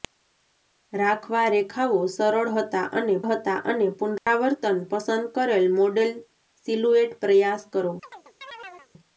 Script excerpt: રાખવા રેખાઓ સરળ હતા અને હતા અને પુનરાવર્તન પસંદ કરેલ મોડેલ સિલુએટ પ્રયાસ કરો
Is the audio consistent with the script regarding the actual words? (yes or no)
yes